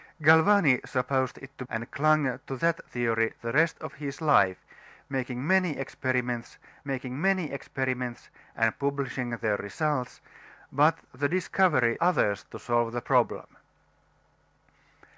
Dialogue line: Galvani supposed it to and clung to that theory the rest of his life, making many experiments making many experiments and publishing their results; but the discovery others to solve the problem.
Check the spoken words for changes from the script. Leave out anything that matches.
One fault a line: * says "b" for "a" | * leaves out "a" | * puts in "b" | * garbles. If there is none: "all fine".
all fine